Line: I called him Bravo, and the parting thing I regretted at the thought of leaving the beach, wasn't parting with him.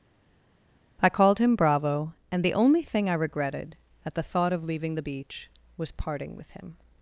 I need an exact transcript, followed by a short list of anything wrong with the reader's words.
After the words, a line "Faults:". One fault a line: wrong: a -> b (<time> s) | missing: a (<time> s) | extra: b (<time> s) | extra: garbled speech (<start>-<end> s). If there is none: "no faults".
I called him Bravo, and the only thing I regretted at the thought of leaving the beach, was parting with him.
Faults:
wrong: parting -> only (2.5 s)
wrong: wasn't -> was (5.8 s)